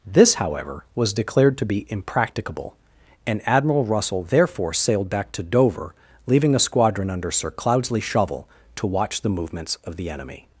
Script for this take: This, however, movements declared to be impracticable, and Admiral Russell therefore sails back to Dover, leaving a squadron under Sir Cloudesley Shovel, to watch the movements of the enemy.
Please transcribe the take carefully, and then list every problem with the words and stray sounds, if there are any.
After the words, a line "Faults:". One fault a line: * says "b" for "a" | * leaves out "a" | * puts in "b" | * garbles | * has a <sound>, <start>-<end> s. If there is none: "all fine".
This, however, was declared to be impracticable, and Admiral Russell therefore sailed back to Dover, leaving a squadron under Sir Cloudesley Shovel, to watch the movements of the enemy.
Faults:
* says "was" for "movements"
* says "sailed" for "sails"